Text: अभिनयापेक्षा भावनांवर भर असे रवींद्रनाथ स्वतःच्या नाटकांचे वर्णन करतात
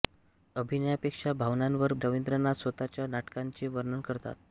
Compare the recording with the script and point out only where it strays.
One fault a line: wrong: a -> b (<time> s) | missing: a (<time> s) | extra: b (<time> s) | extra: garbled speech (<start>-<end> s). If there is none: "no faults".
missing: भर असे (1.9 s)